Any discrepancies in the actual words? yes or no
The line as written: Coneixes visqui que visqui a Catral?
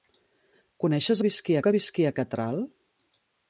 no